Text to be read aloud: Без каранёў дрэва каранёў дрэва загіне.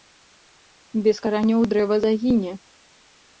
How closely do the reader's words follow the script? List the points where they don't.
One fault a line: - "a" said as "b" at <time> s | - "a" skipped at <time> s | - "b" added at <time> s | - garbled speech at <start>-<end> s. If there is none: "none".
- "каранёў дрэва" skipped at 2.0 s